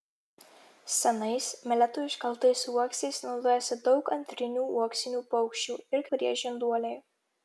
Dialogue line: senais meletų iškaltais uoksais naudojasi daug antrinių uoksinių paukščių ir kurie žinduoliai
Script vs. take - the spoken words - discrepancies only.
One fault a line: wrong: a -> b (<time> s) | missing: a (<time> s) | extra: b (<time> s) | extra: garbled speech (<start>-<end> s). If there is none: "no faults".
no faults